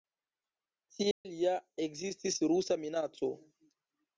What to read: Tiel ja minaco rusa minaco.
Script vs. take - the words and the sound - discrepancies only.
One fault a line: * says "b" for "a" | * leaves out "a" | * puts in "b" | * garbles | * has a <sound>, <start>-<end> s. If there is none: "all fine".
* has a dropout, 1.1-1.3 s
* says "ekzistis" for "minaco"